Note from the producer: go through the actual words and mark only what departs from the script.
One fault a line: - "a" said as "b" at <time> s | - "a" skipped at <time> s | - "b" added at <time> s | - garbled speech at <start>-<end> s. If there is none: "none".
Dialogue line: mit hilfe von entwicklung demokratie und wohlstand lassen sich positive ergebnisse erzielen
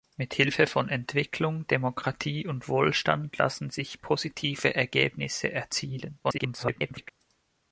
- garbled speech at 6.2-7.1 s